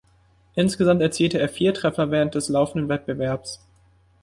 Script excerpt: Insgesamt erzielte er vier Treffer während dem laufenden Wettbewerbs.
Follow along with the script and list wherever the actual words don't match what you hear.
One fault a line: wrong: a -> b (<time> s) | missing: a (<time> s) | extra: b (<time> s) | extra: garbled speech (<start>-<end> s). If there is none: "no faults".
wrong: dem -> des (2.3 s)